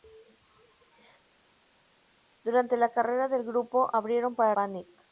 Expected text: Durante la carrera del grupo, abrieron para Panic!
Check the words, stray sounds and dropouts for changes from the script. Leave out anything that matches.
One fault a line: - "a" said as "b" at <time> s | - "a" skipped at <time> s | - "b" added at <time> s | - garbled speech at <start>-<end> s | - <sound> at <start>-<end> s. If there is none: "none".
none